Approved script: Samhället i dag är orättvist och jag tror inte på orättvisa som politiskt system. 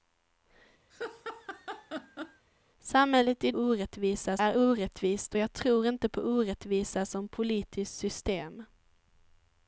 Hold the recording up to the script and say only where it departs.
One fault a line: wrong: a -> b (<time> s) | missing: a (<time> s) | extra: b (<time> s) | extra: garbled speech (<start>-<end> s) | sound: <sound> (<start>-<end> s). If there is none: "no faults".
sound: laugh (0.9-2.4 s)
wrong: dag -> orättvisa (3.5 s)
missing: och (5.3 s)